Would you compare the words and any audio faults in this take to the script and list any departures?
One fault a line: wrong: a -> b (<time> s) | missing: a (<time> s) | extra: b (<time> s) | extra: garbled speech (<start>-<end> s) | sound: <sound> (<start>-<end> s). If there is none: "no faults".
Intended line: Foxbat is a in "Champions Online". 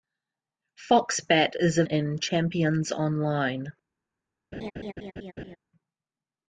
sound: laugh (4.5-5.6 s)